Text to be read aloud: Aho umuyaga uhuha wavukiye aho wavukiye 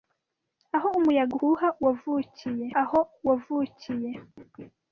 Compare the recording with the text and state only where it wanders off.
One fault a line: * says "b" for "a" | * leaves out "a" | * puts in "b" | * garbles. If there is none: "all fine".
all fine